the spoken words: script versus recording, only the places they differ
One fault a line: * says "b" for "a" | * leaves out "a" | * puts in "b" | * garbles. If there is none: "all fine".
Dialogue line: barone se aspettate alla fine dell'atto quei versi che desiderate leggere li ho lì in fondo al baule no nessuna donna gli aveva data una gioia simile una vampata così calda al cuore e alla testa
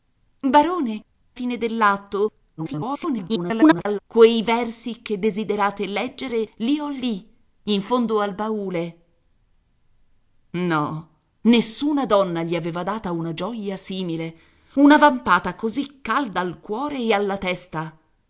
* leaves out "se aspettate alla"
* garbles